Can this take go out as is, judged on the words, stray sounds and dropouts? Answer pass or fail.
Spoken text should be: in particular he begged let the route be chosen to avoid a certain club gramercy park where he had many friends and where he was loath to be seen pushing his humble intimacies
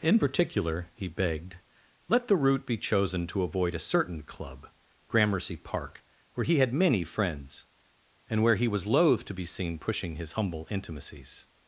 pass